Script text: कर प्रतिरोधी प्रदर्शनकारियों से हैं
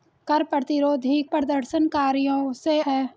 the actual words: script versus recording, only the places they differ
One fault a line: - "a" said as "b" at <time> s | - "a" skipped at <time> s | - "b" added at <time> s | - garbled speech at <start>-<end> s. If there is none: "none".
none